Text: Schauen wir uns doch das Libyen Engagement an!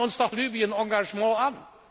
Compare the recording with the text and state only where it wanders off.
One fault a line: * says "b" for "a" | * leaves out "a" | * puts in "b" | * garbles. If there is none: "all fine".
* leaves out "das"